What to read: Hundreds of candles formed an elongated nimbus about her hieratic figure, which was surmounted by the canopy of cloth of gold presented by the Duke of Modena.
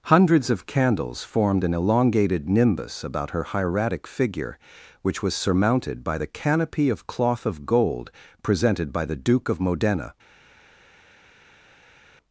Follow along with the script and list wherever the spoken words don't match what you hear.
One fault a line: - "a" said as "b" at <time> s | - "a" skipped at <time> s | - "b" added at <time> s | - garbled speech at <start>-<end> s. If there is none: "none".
none